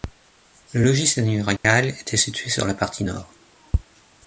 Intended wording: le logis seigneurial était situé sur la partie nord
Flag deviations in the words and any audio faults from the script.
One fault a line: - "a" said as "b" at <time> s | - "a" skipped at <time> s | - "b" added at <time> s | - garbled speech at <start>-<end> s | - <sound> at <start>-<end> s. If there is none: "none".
- dropout at 1.6-1.6 s